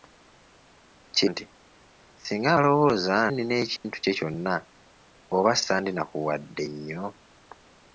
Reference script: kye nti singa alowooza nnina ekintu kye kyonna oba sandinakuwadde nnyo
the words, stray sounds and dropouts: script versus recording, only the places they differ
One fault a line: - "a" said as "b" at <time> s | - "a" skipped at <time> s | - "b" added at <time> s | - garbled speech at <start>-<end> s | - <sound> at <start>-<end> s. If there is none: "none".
- dropout at 3.8-3.8 s